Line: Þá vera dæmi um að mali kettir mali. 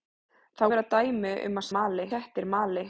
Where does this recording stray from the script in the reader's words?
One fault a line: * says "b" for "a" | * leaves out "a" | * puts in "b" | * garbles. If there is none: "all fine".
all fine